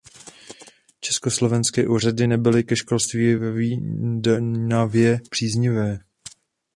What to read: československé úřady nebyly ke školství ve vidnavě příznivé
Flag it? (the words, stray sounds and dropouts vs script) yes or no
no